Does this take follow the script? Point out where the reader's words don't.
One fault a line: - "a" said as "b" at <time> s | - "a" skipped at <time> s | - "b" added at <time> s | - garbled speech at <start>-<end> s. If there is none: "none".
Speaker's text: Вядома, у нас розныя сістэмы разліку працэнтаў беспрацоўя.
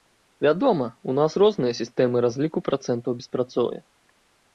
none